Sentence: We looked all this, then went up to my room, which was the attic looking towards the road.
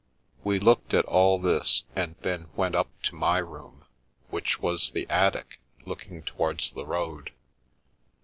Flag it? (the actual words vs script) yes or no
yes